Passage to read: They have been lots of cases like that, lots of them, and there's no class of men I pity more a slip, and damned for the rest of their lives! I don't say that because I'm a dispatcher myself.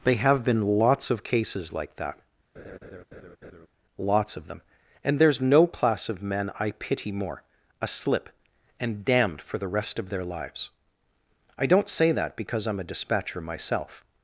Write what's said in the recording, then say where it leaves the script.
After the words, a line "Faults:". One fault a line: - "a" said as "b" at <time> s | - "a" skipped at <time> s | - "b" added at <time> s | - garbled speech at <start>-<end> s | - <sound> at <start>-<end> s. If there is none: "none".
They have been lots of cases like that, lots of them, and there's no class of men I pity more a slip, and damned for the rest of their lives! I don't say that because I'm a dispatcher myself.
Faults:
- laugh at 2.5-3.7 s